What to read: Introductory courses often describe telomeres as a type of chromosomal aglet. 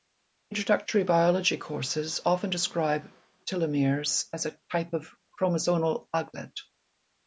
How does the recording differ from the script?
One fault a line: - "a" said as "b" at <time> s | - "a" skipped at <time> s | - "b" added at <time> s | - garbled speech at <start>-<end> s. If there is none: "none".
- "biology" added at 1.0 s